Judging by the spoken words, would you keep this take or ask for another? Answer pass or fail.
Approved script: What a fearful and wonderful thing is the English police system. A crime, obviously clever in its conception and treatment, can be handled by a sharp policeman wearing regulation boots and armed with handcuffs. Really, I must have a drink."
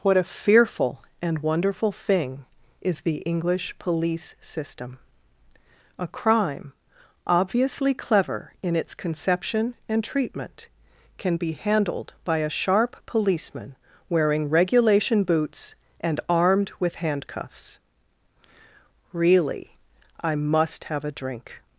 pass